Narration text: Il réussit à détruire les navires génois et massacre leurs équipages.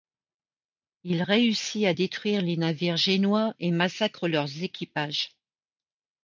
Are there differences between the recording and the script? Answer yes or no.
no